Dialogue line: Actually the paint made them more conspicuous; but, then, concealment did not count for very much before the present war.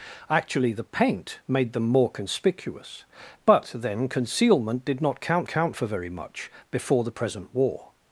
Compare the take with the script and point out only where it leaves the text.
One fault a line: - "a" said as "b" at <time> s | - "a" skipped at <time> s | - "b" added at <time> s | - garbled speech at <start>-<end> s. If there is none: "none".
- "count" added at 5.5 s